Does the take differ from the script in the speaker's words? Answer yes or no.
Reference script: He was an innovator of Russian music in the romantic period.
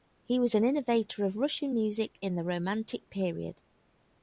no